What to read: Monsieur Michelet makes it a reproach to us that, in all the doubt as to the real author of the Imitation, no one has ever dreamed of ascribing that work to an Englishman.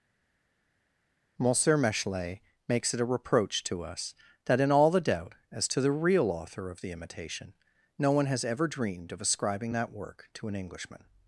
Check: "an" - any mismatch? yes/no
no